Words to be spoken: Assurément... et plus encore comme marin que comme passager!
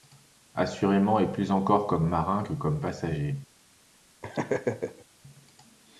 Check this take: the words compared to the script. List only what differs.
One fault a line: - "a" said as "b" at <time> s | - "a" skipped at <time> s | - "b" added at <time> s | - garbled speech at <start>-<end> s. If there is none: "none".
none